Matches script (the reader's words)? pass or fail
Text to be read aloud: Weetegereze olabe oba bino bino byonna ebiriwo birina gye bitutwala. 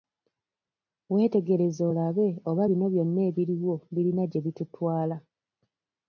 fail